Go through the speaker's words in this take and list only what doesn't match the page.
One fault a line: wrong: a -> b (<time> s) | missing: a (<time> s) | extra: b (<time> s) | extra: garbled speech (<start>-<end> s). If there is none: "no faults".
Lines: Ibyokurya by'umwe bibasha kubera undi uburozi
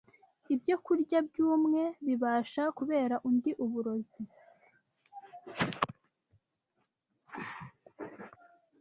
no faults